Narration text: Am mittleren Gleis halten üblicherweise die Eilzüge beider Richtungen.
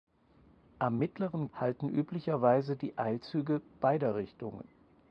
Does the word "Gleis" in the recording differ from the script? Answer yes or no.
yes